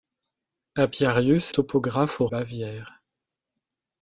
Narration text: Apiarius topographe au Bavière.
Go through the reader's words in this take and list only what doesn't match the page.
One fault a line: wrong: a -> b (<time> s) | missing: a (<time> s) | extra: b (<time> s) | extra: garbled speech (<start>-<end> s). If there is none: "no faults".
no faults